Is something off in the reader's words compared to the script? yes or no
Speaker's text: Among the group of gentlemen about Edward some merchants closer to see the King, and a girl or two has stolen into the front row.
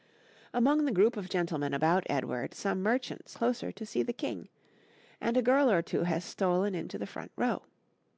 no